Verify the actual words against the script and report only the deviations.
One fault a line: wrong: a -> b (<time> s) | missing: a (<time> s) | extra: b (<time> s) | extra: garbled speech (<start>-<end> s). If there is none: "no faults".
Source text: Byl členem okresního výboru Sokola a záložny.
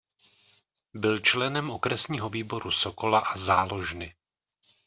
no faults